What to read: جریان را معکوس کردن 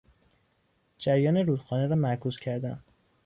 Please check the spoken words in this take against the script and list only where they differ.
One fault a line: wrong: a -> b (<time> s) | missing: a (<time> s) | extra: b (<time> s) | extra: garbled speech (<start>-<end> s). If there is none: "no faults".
extra: رودخانه (1.4 s)